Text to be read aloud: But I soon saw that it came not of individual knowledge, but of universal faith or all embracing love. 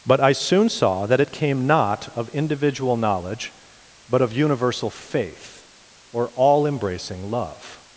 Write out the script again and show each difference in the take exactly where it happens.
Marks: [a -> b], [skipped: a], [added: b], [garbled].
But I soon saw that it came not of individual knowledge, but of universal faith or all embracing love.